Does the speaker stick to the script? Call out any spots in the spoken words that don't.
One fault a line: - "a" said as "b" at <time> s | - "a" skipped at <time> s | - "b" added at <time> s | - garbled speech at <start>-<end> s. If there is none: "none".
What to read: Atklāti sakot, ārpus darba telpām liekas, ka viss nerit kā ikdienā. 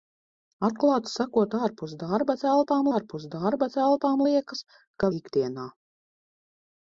- "liekas ka viss nerit kā" said as "ārpus darba telpām liekas ka" at 3.0 s